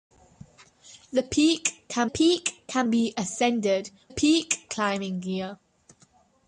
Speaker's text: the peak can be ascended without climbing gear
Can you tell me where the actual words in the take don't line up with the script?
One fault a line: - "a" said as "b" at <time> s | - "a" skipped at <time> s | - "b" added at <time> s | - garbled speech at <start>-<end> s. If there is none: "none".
- "peak can" added at 2.0 s
- "without" said as "peak" at 4.1 s